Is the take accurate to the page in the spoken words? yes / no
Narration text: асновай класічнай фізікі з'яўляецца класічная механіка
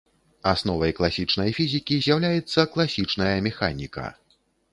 yes